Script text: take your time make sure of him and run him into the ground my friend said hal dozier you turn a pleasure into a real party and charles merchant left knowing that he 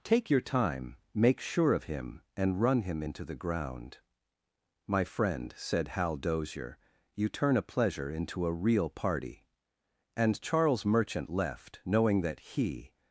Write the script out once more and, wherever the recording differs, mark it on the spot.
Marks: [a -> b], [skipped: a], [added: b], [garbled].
take your time make sure of him and run him into the ground my friend said hal dozier you turn a pleasure into a real party and charles merchant left knowing that he